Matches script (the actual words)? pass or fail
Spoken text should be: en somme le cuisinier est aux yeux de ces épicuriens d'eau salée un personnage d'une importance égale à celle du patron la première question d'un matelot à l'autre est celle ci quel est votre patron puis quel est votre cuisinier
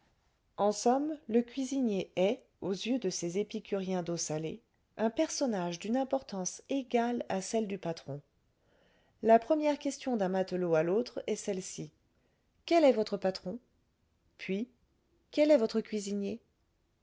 pass